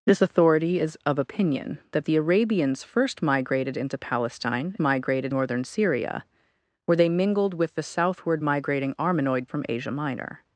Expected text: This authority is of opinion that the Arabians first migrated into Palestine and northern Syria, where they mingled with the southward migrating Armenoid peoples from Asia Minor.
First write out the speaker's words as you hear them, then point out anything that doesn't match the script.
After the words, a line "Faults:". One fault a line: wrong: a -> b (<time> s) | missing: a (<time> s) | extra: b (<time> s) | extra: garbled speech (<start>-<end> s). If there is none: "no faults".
This authority is of opinion that the Arabians first migrated into Palestine migrated northern Syria, where they mingled with the southward migrating Armenoid from Asia Minor.
Faults:
wrong: and -> migrated (4.8 s)
missing: peoples (9.5 s)